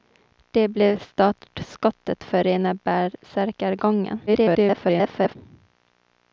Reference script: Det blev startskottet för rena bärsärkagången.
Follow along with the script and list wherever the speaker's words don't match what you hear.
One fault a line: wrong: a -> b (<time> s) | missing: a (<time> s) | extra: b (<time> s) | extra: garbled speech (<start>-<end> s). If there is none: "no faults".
extra: garbled speech (4.3-5.4 s)